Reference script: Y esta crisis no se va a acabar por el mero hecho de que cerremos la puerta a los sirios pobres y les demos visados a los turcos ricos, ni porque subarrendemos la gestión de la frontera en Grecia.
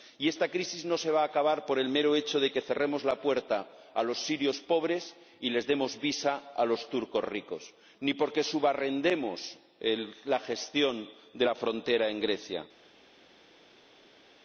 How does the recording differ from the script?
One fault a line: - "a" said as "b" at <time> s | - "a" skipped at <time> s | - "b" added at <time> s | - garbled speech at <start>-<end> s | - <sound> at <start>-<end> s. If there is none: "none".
none